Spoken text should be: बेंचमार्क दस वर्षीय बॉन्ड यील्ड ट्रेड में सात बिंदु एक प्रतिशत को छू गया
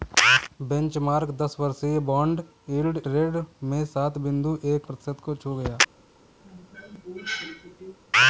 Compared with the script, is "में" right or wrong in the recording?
right